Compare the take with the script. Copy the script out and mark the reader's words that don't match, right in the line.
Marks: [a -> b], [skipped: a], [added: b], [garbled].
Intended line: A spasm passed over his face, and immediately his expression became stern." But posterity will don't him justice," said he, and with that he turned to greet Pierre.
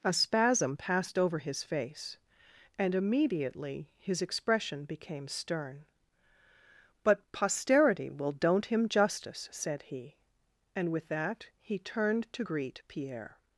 A spasm passed over his face, and immediately his expression became stern." But posterity will don't him justice," said he, and with that he turned to greet Pierre.